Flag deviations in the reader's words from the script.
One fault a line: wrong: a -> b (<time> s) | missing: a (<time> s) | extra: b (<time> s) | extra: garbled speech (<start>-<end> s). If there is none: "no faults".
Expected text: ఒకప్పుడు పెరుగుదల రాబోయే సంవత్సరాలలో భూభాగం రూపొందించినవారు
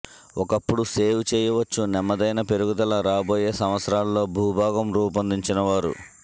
extra: సేవ్ చేయవచ్చు నెమ్మదైన (0.9 s)